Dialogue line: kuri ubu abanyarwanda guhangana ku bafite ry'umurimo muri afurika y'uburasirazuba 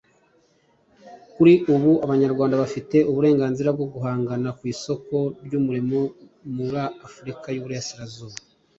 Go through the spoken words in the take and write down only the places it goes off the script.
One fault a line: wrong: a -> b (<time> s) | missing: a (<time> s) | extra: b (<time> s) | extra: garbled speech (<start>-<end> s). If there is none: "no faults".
extra: bafite uburenganzira bwo (2.6 s)
wrong: bafite -> isoko (4.7 s)